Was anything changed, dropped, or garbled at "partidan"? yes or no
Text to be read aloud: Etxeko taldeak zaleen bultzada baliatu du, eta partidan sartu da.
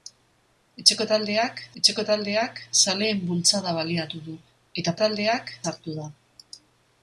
yes